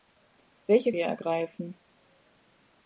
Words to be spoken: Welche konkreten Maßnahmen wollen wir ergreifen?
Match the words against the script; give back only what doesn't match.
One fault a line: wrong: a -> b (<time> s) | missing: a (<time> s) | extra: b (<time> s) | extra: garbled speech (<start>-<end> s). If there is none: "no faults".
missing: konkreten Maßnahmen wollen (0.9 s)